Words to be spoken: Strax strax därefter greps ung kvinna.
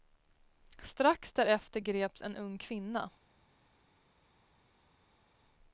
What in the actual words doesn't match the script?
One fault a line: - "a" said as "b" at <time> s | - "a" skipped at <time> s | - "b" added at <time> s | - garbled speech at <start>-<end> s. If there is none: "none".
- "strax" skipped at 1.3 s
- "en" added at 2.2 s